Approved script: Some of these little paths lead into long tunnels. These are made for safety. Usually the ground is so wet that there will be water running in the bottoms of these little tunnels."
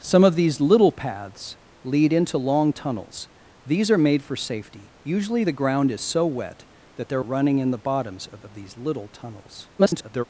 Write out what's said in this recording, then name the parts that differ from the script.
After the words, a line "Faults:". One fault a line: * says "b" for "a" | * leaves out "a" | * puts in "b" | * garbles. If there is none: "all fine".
Some of these little paths lead into long tunnels. These are made for safety. Usually the ground is so wet that there running in the bottoms of of these little tunnels." [garbled]
Faults:
* leaves out "will be water"
* puts in "of"
* garbles